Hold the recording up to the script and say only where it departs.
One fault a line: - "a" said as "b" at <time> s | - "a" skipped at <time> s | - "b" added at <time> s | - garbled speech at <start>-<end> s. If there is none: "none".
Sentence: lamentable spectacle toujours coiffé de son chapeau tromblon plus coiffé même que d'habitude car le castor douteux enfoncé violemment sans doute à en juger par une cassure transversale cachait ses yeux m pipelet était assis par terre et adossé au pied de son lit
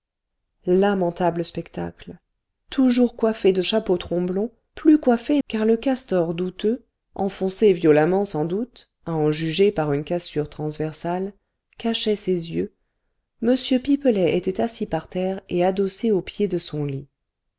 - "son" skipped at 3.6 s
- "même que d'habitude" skipped at 5.4 s